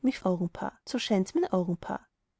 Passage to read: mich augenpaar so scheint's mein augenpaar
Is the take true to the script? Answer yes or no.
yes